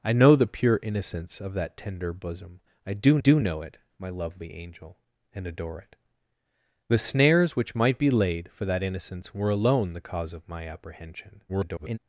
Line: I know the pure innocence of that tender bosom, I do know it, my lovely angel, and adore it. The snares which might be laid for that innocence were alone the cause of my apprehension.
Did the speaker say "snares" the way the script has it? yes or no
yes